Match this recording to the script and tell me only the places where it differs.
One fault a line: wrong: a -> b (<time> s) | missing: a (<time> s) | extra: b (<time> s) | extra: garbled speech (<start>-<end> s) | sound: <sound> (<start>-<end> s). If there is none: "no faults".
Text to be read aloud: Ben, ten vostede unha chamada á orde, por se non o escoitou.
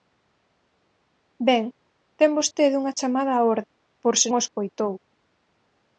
missing: non (4.3 s)